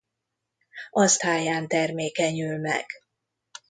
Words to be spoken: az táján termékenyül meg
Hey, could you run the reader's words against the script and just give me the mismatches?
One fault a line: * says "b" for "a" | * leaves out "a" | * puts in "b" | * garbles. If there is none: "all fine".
all fine